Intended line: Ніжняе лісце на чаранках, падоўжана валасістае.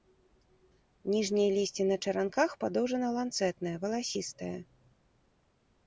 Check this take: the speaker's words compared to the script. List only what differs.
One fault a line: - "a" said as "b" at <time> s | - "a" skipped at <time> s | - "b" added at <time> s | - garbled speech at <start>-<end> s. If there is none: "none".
- "ланцэтнае" added at 3.2 s